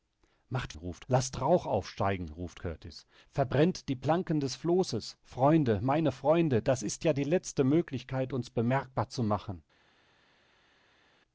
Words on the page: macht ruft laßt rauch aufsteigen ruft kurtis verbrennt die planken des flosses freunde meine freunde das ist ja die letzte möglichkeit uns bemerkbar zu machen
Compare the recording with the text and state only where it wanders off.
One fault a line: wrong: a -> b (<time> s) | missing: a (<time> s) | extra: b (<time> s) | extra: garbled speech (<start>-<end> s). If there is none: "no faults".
no faults